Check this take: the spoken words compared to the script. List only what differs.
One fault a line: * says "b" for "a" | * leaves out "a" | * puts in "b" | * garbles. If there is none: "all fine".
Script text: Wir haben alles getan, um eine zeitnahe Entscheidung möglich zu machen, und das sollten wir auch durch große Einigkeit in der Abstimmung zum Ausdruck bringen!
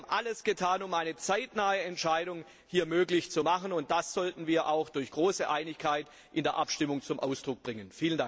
all fine